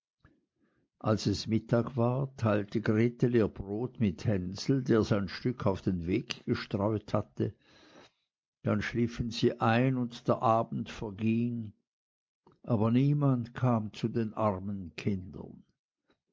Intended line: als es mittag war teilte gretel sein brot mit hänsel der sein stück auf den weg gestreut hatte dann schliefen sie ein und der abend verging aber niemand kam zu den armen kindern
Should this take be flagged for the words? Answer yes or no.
yes